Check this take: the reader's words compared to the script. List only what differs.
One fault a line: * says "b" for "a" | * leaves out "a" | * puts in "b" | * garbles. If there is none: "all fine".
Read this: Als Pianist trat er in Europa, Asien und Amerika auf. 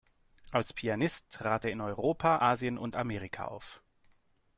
all fine